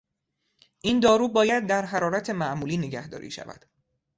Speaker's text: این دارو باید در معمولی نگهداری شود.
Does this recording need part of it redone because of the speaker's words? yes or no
yes